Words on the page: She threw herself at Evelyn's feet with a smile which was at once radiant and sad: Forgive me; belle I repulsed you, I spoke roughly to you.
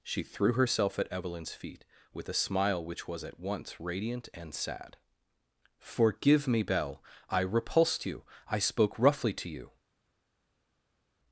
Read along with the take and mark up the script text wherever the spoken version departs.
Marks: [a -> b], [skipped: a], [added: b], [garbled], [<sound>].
She threw herself at Evelyn's feet with a smile which was at once radiant and sad: Forgive me; belle I repulsed you, I spoke roughly to you.